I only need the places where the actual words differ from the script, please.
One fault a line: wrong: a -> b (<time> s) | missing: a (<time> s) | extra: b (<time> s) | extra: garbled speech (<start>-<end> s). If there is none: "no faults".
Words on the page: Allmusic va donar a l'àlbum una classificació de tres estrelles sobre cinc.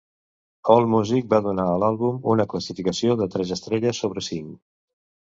no faults